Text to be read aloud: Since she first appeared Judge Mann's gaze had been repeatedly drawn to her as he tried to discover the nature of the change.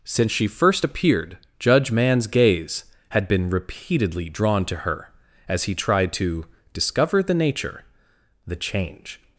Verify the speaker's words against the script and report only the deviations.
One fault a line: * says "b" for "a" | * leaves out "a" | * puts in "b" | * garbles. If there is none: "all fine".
* leaves out "of"